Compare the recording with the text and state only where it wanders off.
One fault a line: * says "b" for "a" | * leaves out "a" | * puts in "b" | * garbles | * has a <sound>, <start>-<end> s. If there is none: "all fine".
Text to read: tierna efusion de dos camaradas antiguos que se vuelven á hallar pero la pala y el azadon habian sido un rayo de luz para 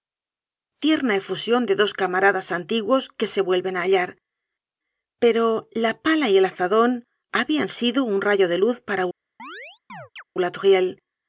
* has a chirp, 9.4-10.2 s